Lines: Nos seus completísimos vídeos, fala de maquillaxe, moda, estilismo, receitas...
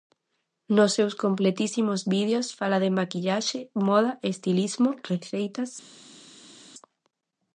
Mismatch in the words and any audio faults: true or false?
false